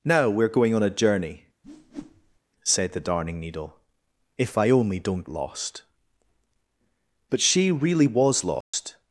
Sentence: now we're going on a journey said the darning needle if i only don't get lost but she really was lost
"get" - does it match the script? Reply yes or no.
no